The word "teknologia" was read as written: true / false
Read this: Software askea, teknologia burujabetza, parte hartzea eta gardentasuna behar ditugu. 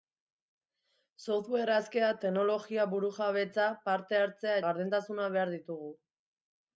true